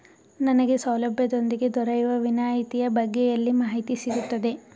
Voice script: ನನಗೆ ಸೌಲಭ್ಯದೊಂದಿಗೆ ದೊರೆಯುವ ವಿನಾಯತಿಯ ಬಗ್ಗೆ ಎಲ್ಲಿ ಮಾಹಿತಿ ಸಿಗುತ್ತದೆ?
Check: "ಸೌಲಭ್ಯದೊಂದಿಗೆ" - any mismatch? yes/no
no